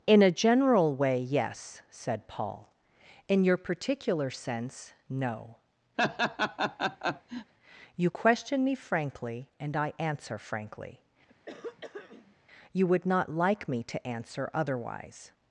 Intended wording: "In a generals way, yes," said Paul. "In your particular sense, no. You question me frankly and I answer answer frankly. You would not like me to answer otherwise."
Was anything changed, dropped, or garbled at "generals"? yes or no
yes